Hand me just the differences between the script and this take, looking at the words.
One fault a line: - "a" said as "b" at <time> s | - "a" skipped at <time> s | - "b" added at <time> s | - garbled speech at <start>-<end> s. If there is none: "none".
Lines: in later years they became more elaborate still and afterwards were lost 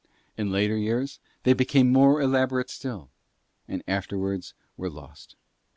none